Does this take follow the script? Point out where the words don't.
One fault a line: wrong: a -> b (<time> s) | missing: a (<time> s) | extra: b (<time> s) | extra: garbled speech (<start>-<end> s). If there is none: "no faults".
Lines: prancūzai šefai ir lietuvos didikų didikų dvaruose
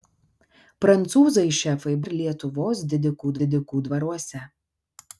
no faults